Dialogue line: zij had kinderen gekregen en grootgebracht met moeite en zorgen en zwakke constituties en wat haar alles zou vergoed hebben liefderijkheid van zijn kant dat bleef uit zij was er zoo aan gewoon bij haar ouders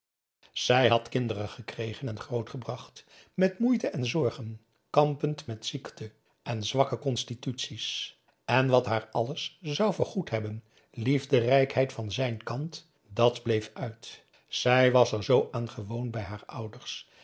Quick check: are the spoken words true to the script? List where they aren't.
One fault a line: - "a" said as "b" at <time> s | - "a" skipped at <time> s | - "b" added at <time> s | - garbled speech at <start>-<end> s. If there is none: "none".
- "kampend met ziekte" added at 4.9 s